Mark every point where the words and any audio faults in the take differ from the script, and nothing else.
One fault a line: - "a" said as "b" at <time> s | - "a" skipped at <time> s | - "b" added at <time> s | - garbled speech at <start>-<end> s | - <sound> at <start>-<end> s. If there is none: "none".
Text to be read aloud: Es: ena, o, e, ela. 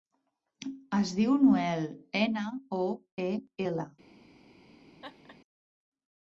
- "diu Noel" added at 1.2 s
- laugh at 5.0-5.4 s